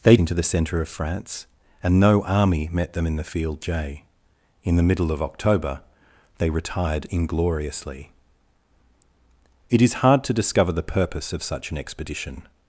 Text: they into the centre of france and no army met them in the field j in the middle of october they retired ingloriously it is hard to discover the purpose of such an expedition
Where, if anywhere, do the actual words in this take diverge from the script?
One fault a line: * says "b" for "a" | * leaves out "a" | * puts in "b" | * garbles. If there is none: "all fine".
all fine